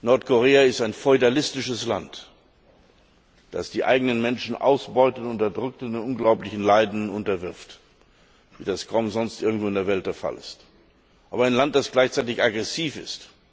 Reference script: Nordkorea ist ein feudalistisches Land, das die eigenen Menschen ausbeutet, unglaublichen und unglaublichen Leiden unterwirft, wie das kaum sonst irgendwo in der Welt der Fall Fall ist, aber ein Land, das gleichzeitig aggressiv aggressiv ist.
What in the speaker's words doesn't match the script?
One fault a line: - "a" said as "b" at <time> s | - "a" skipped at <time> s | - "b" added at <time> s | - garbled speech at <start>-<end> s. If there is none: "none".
- "unglaublichen" said as "unterdrückt" at 5.2 s
- "Fall" skipped at 10.3 s
- "aggressiv" skipped at 13.0 s